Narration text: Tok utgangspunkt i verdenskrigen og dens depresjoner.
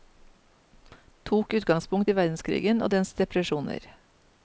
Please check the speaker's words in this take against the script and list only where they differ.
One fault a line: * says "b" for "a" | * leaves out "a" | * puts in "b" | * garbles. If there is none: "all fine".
all fine